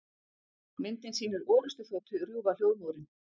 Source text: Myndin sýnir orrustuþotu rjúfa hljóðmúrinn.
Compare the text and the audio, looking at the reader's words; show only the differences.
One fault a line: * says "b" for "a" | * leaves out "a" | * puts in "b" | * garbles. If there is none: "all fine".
all fine